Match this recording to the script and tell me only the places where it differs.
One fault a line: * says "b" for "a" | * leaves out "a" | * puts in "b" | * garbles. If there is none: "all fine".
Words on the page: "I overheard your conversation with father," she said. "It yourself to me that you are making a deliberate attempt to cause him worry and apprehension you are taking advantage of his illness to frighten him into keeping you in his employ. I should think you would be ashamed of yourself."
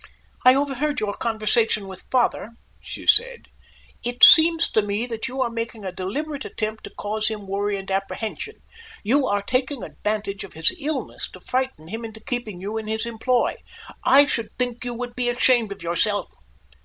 * says "seems" for "yourself"